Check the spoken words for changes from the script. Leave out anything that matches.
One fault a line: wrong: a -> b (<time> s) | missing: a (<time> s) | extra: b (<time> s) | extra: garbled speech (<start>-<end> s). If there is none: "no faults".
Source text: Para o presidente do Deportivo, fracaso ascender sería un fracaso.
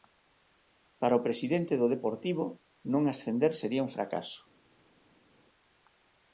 wrong: fracaso -> non (2.9 s)